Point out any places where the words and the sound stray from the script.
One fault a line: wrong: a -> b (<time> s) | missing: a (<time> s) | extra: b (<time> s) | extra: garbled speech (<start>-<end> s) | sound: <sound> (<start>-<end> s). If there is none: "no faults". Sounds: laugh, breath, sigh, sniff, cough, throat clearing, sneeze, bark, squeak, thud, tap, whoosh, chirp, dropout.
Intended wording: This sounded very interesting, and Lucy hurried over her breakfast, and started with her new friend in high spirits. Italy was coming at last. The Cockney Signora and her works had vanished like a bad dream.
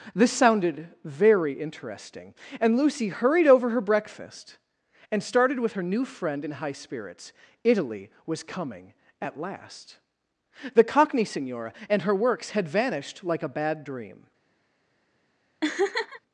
sound: laugh (15.6-16.2 s)